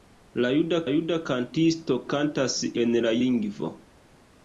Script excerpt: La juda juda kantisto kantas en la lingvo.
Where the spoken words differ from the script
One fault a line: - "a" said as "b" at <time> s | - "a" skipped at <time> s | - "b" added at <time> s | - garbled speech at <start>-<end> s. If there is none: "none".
none